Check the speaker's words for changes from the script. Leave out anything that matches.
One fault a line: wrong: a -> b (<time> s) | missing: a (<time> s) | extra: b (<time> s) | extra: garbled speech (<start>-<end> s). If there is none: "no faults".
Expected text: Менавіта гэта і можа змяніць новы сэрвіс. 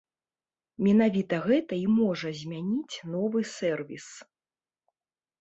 no faults